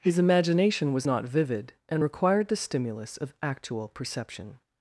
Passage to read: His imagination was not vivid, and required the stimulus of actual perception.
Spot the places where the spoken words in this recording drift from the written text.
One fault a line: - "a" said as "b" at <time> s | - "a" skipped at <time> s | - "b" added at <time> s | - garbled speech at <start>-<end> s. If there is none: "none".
none